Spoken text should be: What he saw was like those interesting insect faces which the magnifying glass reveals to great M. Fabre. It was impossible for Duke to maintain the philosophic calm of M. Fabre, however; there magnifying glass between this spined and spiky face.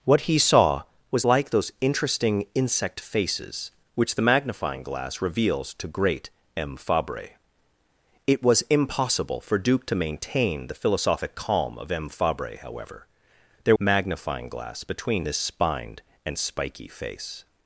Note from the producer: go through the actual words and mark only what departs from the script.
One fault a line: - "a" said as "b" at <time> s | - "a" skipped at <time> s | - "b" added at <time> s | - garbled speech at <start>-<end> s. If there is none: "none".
none